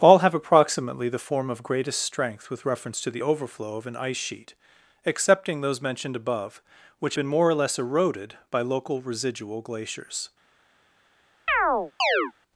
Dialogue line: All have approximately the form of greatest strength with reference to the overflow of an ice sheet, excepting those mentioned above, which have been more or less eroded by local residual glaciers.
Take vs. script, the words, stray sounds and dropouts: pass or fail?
fail